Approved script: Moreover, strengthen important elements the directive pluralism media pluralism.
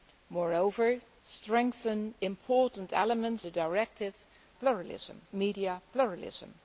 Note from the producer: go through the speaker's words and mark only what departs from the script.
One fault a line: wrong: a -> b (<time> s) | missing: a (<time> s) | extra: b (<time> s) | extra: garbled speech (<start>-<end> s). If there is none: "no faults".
no faults